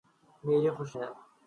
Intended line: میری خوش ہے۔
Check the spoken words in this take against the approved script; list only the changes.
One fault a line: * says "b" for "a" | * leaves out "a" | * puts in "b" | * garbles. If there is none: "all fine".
all fine